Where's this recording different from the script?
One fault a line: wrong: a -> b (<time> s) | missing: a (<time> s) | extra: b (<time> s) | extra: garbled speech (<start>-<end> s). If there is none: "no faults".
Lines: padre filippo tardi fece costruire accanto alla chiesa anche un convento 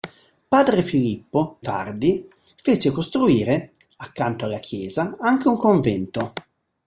no faults